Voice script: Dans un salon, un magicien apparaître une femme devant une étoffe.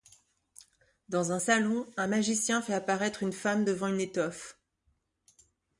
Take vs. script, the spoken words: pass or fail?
fail